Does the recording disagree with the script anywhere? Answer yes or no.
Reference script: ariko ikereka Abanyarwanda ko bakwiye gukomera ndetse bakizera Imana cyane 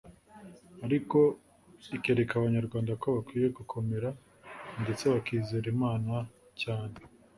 no